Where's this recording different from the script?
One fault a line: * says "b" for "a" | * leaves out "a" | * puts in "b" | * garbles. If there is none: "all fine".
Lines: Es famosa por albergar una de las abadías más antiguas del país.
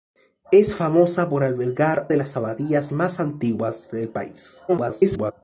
* leaves out "una"
* garbles